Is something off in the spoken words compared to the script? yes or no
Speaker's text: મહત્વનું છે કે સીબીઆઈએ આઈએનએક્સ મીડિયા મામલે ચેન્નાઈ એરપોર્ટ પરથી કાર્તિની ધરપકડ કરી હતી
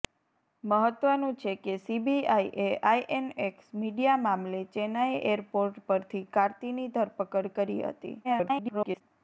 yes